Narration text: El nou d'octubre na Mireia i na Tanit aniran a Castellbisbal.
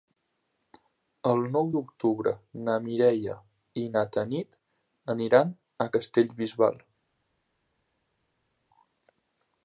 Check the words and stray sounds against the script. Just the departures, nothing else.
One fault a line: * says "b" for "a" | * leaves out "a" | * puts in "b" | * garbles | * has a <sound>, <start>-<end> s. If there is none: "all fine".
all fine